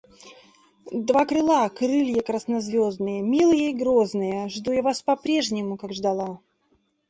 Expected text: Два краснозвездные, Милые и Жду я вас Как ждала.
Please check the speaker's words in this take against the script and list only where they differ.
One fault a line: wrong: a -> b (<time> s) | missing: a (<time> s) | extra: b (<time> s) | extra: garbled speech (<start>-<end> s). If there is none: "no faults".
extra: крыла Крылья (1.2 s)
extra: грозные (3.7 s)
extra: по прежнему (5.0 s)